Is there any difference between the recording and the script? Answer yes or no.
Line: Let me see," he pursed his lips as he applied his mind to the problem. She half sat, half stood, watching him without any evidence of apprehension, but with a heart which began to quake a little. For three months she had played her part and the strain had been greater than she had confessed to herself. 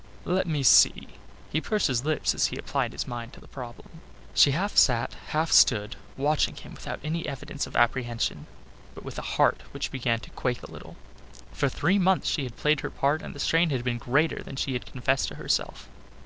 no